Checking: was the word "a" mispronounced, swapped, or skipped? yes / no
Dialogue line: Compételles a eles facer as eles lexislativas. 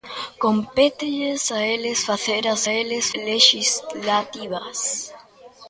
no